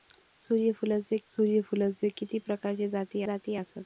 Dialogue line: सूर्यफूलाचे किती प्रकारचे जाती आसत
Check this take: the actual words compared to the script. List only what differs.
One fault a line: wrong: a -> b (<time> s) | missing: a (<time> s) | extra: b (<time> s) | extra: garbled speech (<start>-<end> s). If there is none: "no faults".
extra: सूर्यफूलाचे (1.3 s)
extra: जाती (3.2 s)